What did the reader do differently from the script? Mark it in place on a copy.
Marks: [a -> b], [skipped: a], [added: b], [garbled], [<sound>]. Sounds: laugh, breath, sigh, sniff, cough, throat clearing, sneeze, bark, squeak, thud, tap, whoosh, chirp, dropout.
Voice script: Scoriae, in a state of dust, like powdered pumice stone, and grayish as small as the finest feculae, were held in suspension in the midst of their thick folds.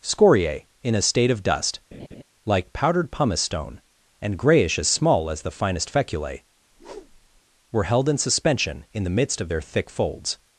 Scoriae, in a state of dust, [laugh] like powdered pumice stone, and grayish as small as the finest feculae, [whoosh] were held in suspension in the midst of their thick folds.